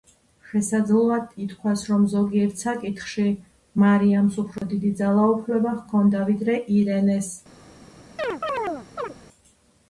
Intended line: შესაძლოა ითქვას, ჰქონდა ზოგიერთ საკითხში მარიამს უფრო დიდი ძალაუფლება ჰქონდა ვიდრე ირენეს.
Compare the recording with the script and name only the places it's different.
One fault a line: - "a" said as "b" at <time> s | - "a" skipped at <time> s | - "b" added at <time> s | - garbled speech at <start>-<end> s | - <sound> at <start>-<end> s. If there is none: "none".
- "ჰქონდა" said as "რომ" at 1.9 s
- dropout at 4.6-4.6 s
- chirp at 8.2-9.1 s